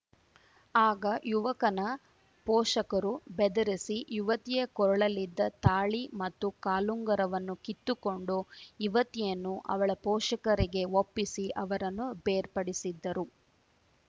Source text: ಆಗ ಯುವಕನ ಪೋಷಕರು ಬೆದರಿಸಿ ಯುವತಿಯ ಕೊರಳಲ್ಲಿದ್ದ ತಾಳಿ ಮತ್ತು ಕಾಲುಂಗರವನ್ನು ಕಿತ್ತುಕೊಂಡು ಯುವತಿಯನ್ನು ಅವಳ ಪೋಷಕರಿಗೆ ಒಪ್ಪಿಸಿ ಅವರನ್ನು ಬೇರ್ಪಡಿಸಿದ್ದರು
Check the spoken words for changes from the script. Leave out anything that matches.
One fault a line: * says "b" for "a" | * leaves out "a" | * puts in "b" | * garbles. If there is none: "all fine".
all fine